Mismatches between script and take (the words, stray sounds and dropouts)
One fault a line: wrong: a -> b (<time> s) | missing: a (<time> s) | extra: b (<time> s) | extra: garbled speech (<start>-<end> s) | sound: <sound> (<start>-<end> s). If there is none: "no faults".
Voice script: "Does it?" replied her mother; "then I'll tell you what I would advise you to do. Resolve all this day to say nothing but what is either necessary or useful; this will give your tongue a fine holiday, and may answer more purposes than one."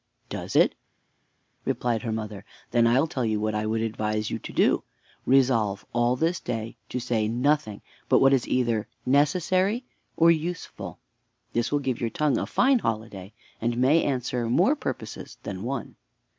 no faults